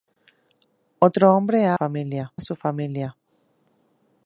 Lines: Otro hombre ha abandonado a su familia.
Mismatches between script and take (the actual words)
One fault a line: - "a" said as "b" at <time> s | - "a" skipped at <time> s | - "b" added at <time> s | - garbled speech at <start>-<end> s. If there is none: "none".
- "abandonado" said as "familia" at 1.7 s